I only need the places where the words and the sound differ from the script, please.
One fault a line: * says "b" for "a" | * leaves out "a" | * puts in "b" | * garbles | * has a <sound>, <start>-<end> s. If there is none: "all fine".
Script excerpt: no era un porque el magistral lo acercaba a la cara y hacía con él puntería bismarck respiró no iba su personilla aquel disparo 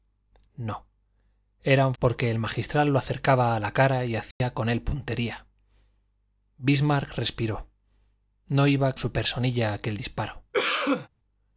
* has a dropout, 4.3-4.4 s
* has a cough, 10.5-11.1 s